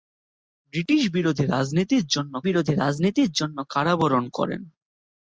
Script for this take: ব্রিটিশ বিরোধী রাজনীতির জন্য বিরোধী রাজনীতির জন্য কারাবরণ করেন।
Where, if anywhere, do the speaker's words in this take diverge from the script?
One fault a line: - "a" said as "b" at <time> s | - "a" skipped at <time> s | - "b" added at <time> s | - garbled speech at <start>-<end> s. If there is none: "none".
none